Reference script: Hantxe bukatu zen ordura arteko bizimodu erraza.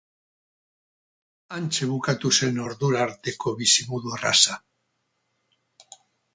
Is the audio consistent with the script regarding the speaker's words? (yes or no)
yes